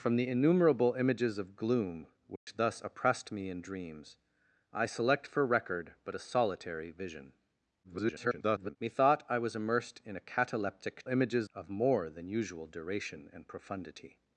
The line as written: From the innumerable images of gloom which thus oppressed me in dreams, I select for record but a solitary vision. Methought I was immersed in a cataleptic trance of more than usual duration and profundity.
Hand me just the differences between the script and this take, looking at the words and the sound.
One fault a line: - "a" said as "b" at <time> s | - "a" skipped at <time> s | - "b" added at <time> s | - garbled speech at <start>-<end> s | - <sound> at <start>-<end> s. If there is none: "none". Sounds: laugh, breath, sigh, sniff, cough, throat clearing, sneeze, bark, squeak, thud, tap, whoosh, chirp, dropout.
- dropout at 2.4-2.5 s
- garbled speech at 7.8-8.8 s
- "trance" said as "images" at 11.1 s